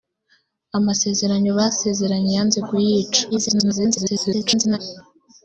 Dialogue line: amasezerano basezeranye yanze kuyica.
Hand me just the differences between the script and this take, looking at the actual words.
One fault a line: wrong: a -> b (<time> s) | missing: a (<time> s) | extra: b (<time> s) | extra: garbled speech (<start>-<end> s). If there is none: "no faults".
extra: garbled speech (3.3-4.8 s)